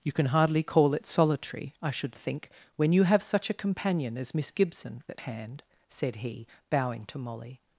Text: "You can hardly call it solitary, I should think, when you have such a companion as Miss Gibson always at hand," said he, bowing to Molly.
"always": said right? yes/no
no